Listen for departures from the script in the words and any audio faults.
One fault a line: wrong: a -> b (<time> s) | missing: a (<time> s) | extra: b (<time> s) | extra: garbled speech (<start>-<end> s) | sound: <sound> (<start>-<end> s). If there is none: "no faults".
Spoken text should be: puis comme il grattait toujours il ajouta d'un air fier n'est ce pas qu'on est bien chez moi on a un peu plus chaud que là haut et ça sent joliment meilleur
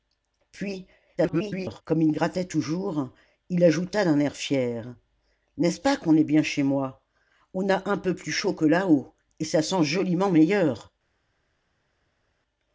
extra: garbled speech (1.2-1.8 s)